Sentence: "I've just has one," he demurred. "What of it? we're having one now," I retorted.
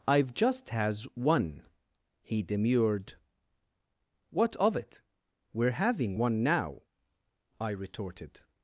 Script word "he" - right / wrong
right